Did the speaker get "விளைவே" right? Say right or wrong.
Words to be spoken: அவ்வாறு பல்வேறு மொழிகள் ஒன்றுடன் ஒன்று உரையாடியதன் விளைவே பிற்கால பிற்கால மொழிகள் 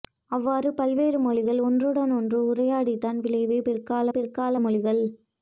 right